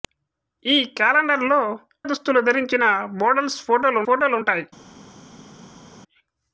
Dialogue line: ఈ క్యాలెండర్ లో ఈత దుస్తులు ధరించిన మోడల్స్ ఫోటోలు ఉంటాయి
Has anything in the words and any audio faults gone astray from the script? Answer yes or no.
yes